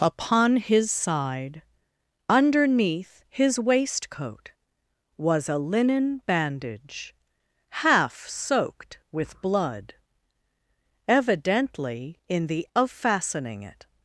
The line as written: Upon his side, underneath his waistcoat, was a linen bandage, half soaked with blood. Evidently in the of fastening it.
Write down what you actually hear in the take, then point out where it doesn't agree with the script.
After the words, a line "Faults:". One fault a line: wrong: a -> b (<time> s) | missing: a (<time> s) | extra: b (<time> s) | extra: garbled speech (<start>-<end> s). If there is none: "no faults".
Upon his side, underneath his waistcoat, was a linen bandage, half soaked with blood. Evidently in the of fastening it.
Faults:
no faults